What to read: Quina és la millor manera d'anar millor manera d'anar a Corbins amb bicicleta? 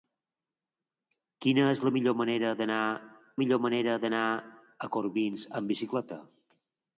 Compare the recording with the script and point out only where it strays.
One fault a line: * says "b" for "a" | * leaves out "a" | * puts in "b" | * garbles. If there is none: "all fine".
all fine